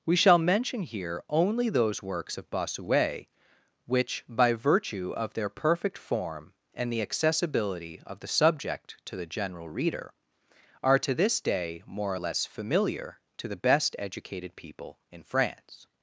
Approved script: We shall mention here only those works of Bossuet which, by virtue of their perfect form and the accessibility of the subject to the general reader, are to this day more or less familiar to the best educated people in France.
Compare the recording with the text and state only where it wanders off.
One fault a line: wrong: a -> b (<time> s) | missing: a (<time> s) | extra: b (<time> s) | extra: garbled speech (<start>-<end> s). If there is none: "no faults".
no faults